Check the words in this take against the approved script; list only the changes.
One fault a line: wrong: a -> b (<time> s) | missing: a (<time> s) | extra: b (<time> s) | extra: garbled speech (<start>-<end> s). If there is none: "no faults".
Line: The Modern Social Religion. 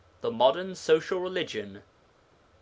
no faults